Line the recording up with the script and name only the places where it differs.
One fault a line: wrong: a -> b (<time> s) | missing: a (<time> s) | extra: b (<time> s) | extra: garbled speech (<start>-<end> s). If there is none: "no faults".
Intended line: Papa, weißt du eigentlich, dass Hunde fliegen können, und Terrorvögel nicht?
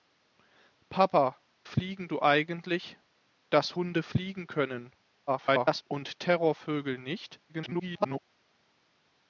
wrong: weißt -> fliegen (1.6 s)
extra: garbled speech (5.3-5.8 s)
extra: garbled speech (7.5-8.2 s)